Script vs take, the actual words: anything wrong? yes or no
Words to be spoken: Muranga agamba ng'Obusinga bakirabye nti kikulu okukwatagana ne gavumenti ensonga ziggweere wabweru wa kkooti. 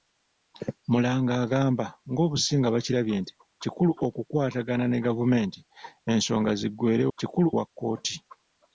yes